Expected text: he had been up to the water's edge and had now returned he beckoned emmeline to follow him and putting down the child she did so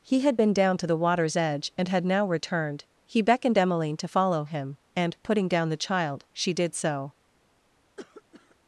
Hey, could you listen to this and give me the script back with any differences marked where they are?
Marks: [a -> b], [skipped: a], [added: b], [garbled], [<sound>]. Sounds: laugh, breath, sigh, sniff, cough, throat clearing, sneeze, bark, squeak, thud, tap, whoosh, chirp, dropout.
he had been [up -> down] to the water's edge and had now returned he beckoned emmeline to follow him and putting down the child she did so [cough]